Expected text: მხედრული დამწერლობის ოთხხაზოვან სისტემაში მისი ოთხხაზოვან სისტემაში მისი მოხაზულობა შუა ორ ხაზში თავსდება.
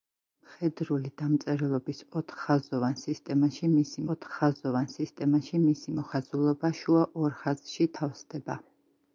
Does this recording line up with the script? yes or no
yes